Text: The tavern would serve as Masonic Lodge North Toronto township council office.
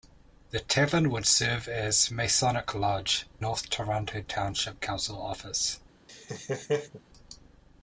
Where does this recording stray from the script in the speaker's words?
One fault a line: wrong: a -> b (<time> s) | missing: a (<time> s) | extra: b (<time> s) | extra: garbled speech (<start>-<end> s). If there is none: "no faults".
no faults